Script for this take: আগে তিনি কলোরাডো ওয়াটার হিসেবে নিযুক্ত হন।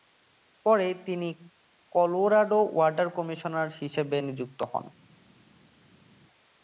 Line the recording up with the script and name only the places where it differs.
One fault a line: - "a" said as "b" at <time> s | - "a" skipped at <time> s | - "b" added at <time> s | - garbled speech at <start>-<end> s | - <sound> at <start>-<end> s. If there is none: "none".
- "আগে" said as "পরে" at 0.7 s
- "কমিশনার" added at 3.2 s